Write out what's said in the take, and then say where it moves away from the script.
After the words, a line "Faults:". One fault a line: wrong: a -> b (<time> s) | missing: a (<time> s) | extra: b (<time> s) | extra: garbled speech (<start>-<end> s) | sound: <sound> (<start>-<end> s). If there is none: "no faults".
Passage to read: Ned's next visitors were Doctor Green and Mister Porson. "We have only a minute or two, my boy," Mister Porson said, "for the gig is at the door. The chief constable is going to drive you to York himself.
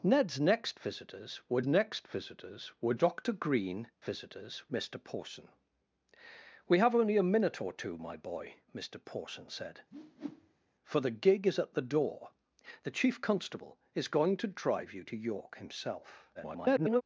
Ned's next visitors were next visitors were Doctor Green visitors Mister Porson. "We have only a minute or two, my boy," Mister Porson said, "for the gig is at the door. The chief constable is going to drive you to York himself. [garbled]
Faults:
extra: next visitors were (1.7 s)
wrong: and -> visitors (4.0 s)
sound: whoosh (9.9-10.7 s)
extra: garbled speech (16.3-17.0 s)